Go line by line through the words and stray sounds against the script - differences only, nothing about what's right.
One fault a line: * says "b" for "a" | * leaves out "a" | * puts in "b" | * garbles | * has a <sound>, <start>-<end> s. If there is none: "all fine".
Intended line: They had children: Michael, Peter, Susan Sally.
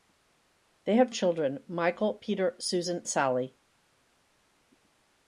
all fine